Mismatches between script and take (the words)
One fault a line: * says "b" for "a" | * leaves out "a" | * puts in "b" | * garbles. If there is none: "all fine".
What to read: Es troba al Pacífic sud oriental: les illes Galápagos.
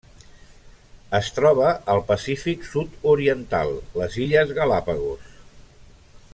all fine